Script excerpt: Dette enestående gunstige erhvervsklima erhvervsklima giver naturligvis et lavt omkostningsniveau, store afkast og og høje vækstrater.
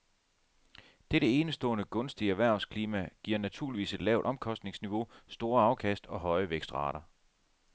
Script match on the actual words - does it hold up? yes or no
no